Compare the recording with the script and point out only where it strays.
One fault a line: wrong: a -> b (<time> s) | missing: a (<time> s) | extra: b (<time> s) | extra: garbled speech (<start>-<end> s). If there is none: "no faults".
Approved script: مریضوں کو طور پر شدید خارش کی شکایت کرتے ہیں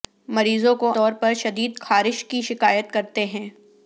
no faults